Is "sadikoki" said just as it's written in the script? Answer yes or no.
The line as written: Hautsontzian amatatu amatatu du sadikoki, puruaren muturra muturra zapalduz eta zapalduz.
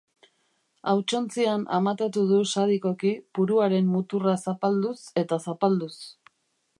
yes